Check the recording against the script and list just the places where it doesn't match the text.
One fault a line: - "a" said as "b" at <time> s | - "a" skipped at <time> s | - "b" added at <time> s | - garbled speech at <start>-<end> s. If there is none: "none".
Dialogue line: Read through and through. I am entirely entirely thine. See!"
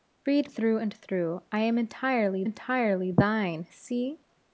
none